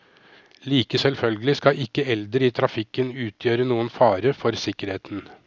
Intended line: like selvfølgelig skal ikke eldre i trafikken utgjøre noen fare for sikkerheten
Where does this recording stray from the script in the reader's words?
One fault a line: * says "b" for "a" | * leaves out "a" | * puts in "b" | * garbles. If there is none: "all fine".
all fine